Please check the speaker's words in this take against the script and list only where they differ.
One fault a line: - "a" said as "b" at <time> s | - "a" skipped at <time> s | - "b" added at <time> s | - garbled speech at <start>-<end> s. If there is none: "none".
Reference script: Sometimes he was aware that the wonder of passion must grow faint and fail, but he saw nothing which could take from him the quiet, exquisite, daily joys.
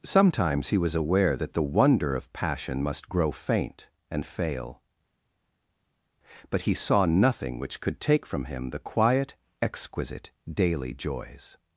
none